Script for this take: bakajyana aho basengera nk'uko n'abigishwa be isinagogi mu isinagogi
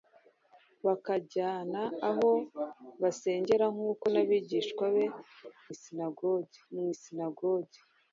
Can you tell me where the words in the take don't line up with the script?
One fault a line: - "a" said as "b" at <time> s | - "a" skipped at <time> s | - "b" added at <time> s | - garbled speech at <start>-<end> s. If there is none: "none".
none